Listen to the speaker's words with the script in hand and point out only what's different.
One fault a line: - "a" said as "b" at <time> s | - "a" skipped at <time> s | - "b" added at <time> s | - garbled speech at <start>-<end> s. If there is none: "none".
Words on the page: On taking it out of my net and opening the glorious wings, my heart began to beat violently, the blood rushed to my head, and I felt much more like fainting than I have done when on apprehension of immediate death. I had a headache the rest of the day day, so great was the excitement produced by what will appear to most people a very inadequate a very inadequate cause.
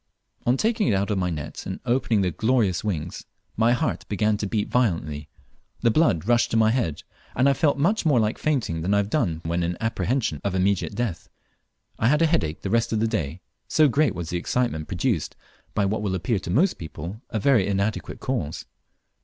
- "on" said as "in" at 9.6 s
- "day" skipped at 13.4 s
- "a very inadequate" skipped at 18.2 s